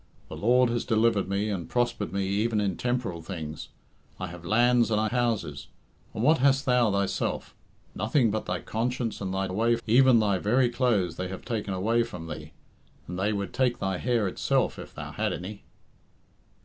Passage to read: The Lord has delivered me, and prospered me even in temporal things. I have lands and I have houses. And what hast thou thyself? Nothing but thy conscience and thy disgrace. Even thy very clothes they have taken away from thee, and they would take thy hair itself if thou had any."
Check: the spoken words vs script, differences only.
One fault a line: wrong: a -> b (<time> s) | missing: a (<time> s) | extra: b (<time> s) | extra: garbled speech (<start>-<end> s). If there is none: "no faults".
missing: have (5.1 s)
wrong: disgrace -> away (9.5 s)